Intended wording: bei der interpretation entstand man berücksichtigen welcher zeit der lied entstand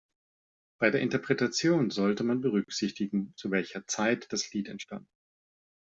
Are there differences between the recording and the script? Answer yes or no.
yes